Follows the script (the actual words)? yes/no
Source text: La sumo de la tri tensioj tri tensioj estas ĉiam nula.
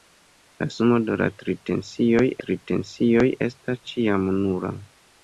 yes